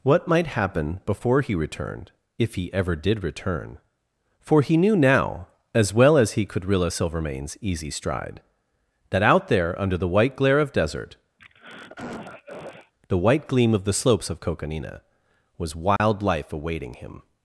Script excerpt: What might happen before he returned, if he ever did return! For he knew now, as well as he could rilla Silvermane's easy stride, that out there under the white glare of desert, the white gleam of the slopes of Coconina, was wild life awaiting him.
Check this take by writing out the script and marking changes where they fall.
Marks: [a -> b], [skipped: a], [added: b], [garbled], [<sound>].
What might happen before he returned, if he ever did return! For he knew now, as well as he could rilla Silvermane's easy stride, that out there under the white glare of desert, [throat clearing] the white gleam of the slopes of Coconina, was wild [dropout] life awaiting him.